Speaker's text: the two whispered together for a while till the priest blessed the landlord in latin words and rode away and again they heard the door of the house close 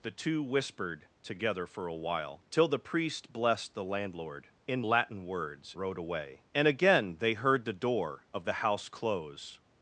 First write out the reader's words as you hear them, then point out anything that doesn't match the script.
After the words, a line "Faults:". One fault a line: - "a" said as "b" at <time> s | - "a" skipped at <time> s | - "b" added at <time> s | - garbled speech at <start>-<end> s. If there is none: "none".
the two whispered together for a while till the priest blessed the landlord in latin words rode away and again they heard the door of the house close
Faults:
- "and" skipped at 5.7 s